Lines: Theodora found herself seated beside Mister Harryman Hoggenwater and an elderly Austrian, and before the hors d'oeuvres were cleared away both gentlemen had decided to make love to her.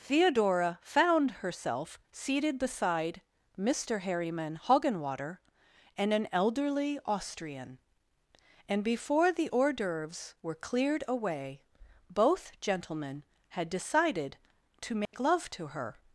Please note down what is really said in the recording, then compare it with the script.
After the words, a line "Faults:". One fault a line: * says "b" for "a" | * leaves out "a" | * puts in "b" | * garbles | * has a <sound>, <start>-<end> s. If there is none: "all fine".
Theodora found herself seated beside Mister Harryman Hoggenwater and an elderly Austrian, and before the hors d'oeuvres were cleared away both gentlemen had decided to make love to her.
Faults:
* has a dropout, 15.1-15.1 s